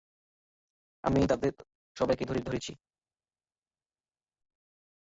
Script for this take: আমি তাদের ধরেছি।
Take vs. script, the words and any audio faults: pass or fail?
fail